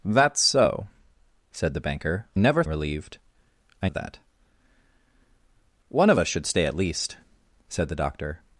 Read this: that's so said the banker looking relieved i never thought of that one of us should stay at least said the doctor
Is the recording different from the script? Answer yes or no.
yes